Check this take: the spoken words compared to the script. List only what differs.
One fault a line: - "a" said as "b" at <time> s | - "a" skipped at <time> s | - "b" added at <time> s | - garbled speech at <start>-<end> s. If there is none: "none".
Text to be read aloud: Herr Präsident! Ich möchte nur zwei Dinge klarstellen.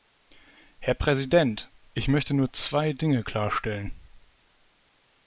none